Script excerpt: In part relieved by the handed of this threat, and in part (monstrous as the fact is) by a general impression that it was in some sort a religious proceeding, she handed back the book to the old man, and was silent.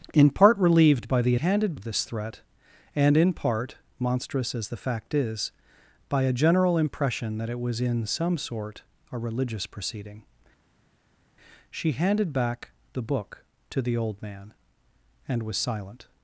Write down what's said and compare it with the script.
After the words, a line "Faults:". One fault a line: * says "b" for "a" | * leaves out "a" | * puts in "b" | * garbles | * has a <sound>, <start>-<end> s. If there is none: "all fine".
In part relieved by the handed of this threat, and in part (monstrous as the fact is) by a general impression that it was in some sort a religious proceeding, she handed back the book to the old man, and was silent.
Faults:
all fine